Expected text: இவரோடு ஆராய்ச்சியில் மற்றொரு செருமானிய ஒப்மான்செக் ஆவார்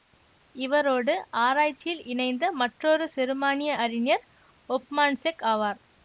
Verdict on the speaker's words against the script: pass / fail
fail